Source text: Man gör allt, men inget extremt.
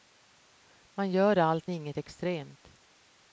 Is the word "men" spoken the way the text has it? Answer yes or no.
no